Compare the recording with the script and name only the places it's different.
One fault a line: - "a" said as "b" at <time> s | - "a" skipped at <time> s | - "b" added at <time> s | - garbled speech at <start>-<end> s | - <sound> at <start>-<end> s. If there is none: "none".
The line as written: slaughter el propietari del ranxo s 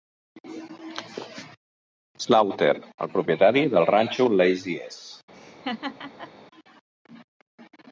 - "lazy" added at 4.4 s
- laugh at 5.3-6.3 s